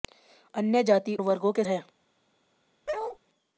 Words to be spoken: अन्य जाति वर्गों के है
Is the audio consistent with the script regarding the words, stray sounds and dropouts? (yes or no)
no